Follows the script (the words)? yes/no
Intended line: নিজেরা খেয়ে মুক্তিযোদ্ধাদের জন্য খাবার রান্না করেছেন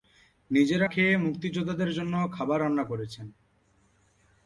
yes